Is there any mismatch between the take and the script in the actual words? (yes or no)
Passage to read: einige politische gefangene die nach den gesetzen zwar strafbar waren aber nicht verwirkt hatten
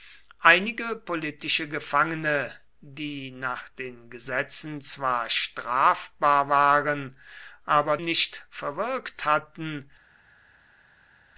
no